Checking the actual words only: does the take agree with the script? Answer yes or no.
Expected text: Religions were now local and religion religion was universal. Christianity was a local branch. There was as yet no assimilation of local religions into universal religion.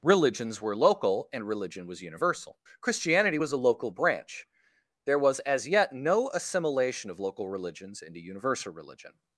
no